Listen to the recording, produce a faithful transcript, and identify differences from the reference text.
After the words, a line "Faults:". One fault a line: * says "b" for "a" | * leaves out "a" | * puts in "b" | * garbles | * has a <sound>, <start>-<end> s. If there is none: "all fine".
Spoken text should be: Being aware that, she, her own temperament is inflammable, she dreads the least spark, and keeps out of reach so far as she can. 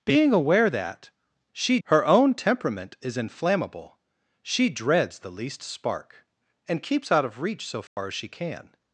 Being aware that, she, her own temperament is inflammable, she dreads the least spark, and keeps out of reach so far as she can.
Faults:
* has a dropout, 7.9-8.0 s